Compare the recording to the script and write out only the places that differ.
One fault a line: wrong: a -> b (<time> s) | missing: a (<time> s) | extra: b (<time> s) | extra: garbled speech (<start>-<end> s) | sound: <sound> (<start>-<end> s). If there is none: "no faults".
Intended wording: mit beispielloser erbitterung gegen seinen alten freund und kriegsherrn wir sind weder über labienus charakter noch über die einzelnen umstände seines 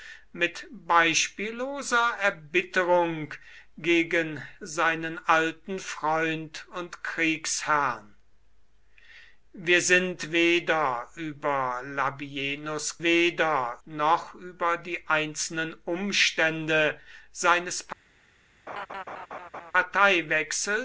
wrong: charakter -> weder (13.0 s)
sound: laugh (18.7-19.7 s)